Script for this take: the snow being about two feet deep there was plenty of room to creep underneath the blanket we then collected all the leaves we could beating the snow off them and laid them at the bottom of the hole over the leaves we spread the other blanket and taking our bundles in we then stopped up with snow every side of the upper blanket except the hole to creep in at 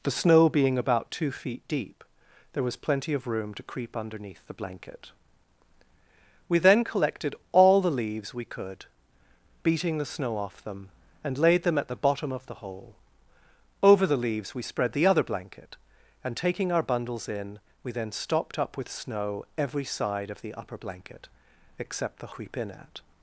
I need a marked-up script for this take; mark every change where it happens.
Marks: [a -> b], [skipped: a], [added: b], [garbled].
the snow being about two feet deep there was plenty of room to creep underneath the blanket we then collected all the leaves we could beating the snow off them and laid them at the bottom of the hole over the leaves we spread the other blanket and taking our bundles in we then stopped up with snow every side of the upper blanket except the [skipped: hole to] creep in at